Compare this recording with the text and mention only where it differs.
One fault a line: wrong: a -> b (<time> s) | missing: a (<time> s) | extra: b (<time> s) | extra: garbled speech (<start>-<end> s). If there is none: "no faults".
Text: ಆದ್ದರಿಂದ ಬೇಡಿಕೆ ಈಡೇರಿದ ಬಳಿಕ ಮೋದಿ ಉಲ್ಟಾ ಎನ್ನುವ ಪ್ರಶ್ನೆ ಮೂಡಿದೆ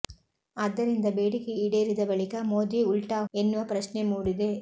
no faults